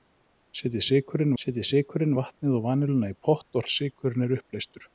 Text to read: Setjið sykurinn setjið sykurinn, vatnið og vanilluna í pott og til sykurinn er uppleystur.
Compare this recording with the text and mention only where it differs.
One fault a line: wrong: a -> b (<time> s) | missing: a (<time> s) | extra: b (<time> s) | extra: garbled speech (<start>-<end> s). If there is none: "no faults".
no faults